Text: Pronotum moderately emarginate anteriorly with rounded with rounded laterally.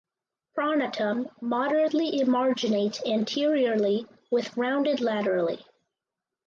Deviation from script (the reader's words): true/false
true